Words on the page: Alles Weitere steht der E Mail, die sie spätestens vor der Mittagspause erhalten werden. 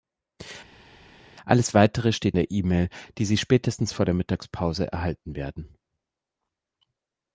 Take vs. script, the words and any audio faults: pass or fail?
pass